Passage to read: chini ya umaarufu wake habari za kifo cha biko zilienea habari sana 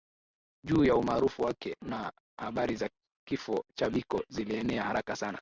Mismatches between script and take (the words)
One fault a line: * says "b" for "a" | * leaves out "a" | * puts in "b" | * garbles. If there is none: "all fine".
* says "juu" for "chini"
* puts in "na"
* says "haraka" for "habari"